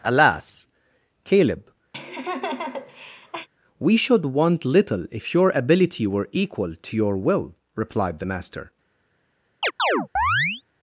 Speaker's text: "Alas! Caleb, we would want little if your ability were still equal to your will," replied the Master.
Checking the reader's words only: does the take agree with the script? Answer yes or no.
no